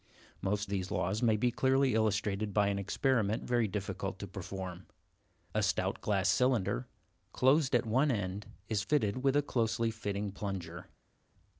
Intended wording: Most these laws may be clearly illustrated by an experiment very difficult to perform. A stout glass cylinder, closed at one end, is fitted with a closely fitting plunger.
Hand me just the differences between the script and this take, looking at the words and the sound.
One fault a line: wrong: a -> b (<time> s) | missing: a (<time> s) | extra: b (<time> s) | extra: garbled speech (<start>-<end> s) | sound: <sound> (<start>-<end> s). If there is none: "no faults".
no faults